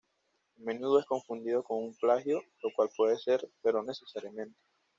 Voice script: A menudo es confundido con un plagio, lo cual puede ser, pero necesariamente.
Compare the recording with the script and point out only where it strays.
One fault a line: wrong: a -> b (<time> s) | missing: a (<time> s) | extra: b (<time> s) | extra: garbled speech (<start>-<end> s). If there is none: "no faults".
no faults